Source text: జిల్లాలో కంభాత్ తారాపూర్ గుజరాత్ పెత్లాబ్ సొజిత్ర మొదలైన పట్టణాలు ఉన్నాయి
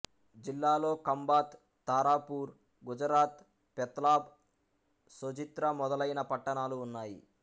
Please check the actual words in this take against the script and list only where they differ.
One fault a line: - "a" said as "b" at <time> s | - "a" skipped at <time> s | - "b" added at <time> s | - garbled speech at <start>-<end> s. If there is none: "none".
none